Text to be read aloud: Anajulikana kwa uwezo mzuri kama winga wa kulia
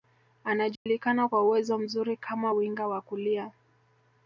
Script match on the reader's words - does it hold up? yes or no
yes